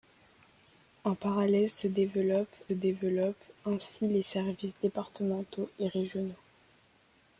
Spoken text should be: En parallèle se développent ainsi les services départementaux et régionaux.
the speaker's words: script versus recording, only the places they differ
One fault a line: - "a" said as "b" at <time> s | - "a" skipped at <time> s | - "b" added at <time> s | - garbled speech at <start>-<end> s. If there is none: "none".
- "développent" added at 2.7 s